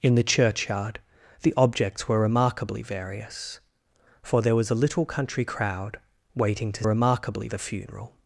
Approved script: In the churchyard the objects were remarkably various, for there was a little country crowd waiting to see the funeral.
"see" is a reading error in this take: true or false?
true